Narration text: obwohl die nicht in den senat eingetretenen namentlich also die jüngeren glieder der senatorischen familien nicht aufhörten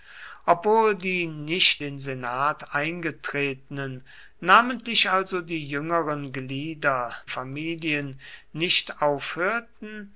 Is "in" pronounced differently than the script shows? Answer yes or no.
yes